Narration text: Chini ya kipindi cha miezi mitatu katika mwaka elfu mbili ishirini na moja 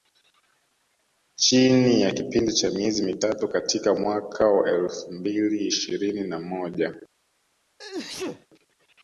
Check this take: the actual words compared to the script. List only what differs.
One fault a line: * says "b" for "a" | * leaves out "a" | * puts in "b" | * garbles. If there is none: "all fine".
* puts in "wa"